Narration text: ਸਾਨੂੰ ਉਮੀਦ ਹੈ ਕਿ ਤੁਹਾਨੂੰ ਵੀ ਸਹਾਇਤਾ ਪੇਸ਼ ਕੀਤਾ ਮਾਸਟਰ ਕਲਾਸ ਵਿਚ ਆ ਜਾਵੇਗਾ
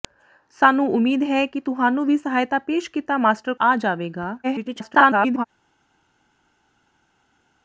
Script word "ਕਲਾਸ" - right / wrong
wrong